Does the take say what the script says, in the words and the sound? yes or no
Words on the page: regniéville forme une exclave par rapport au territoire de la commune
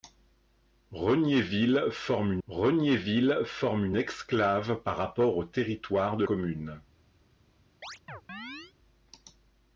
no